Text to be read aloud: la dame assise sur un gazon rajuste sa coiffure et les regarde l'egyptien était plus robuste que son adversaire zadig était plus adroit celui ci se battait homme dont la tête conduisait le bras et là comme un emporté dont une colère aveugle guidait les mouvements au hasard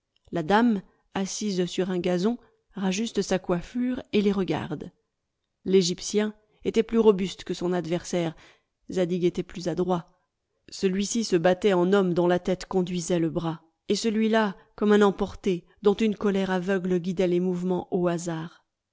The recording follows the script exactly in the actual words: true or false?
false